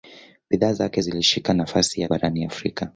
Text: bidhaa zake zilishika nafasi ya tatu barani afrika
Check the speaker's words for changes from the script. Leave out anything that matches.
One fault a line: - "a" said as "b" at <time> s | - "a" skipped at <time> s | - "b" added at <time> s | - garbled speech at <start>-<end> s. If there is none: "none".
- "tatu" skipped at 2.1 s